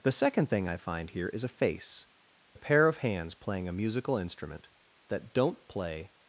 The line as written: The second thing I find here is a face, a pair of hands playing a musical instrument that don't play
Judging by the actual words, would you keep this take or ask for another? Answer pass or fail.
pass